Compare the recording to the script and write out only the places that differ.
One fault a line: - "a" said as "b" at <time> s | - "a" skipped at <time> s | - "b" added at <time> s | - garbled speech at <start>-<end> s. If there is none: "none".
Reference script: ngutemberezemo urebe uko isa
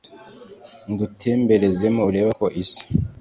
none